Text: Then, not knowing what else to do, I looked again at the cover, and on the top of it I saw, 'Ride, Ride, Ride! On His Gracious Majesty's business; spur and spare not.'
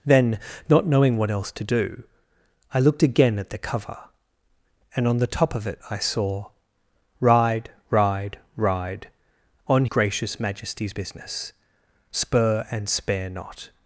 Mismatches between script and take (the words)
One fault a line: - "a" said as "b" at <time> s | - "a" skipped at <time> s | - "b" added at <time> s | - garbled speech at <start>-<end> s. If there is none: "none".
- "His" skipped at 9.8 s